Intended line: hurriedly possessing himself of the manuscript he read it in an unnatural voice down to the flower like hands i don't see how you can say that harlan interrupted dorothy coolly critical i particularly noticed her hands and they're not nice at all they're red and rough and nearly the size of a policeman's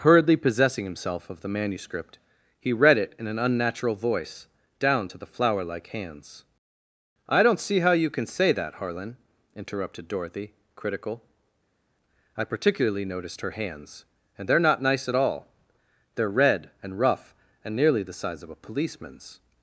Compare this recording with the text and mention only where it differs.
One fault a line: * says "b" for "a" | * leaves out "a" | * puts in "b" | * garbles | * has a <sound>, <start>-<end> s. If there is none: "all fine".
* leaves out "coolly"